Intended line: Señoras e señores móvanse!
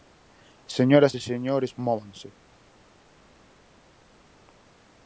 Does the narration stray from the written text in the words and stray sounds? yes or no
no